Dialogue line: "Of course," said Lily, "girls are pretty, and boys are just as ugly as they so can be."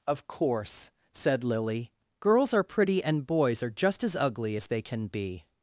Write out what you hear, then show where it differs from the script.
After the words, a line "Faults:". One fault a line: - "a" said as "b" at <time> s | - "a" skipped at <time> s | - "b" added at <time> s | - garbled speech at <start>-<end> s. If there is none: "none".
"Of course," said Lily, "girls are pretty, and boys are just as ugly as they can be."
Faults:
- "so" skipped at 4.8 s